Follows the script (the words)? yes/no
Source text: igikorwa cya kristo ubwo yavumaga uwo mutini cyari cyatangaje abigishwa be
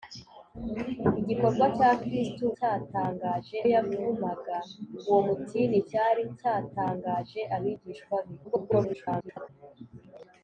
no